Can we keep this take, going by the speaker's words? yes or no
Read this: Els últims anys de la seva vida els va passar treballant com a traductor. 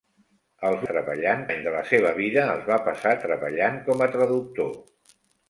no